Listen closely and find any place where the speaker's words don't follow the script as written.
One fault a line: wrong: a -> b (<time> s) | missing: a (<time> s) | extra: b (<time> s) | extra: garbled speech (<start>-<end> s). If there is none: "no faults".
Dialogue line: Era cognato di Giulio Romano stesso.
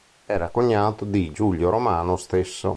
no faults